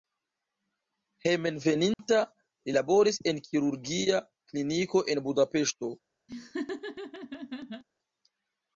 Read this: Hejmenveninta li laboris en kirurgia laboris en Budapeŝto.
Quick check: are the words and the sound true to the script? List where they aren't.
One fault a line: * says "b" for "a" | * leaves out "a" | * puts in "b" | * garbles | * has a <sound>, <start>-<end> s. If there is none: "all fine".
* has a dropout, 1.9-2.0 s
* says "kliniko" for "laboris"
* has a laugh, 6.3-7.8 s